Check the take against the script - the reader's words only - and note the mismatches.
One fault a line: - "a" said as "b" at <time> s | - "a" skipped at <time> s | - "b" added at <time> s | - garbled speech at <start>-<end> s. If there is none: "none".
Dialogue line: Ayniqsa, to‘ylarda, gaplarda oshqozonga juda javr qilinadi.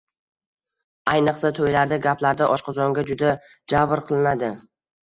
none